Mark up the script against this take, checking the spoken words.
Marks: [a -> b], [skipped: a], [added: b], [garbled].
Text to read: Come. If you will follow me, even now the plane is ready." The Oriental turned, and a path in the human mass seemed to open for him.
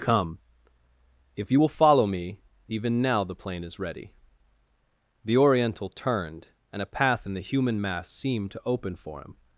Come. If you will follow me, even now the plane is ready." The Oriental turned, and a path in the human mass seemed to open for him.